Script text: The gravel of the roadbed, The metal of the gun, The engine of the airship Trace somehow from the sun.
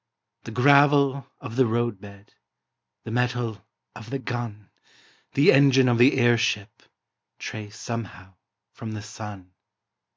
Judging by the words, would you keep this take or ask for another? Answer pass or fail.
pass